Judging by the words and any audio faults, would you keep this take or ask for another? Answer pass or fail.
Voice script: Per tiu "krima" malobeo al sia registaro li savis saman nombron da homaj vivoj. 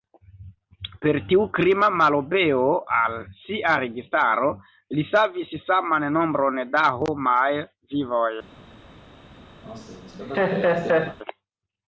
fail